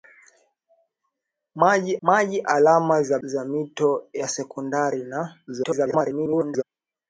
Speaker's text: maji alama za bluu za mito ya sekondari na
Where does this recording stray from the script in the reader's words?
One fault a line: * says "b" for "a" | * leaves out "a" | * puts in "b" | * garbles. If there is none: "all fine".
* puts in "maji"
* leaves out "bluu"
* garbles